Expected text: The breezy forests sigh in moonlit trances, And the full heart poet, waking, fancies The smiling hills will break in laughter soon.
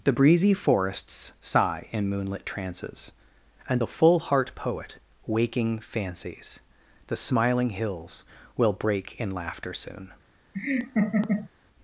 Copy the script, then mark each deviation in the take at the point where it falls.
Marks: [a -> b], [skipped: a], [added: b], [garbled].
The breezy forests sigh in moonlit trances, And the full heart poet, waking, fancies The smiling hills will break in laughter soon.